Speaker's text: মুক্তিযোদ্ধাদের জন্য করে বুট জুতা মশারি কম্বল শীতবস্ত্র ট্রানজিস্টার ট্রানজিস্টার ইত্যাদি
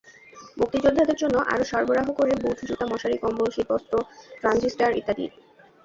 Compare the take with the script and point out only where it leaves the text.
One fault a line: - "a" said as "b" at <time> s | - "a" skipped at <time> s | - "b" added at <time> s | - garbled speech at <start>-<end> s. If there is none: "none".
- "আরও সরবরাহ" added at 1.5 s
- "ট্রানজিস্টার" skipped at 5.0 s